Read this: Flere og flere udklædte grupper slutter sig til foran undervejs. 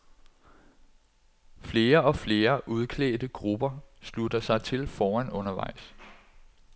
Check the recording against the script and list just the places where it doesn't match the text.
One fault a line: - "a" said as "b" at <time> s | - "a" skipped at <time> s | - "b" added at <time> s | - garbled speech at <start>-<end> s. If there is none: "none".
none